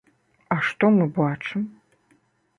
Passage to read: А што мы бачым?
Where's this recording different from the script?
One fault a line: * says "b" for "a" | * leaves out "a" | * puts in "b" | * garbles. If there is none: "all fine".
all fine